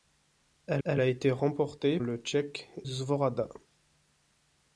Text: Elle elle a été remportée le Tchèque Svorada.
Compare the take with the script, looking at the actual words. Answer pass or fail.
pass